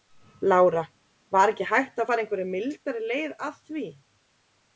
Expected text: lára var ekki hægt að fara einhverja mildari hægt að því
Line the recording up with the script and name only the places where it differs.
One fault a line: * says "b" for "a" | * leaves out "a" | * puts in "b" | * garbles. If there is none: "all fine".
* says "leið" for "hægt"